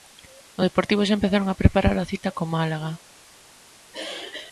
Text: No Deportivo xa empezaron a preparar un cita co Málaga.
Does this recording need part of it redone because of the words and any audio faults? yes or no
yes